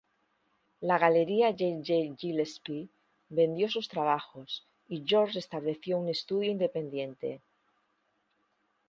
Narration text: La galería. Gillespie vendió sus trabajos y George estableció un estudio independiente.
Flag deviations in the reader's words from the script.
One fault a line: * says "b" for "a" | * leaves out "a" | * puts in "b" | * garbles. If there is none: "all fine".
* puts in "J J"